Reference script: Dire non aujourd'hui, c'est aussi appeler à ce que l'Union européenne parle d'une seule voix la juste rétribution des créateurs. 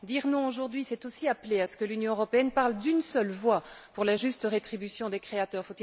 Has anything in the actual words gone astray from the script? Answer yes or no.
yes